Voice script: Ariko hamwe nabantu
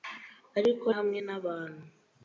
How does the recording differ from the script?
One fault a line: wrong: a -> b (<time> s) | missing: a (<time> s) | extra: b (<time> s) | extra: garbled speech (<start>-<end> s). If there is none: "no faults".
no faults